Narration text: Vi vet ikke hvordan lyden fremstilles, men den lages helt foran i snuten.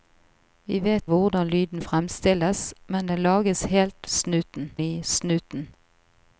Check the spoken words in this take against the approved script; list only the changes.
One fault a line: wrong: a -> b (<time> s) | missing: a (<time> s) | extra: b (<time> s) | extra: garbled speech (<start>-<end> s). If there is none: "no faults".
missing: ikke (1.1 s)
wrong: foran -> snuten (4.1 s)